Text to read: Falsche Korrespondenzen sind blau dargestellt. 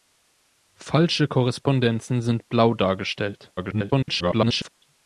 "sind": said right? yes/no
yes